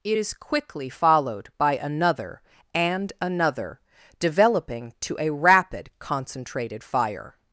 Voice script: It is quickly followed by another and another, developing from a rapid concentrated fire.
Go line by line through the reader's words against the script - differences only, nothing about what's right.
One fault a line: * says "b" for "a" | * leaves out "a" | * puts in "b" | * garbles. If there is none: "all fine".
* says "to" for "from"